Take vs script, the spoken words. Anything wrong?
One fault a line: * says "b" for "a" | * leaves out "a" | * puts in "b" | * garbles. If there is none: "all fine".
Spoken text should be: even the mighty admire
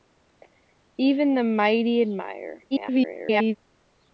* garbles